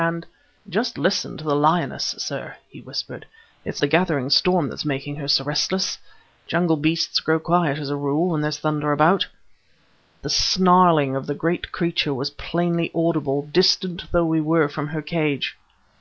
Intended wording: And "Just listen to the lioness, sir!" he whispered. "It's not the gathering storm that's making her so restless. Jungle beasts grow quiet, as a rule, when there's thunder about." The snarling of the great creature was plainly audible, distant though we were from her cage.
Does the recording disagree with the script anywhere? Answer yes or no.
yes